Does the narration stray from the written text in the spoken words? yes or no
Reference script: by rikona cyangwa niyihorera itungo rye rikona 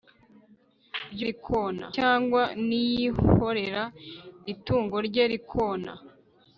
no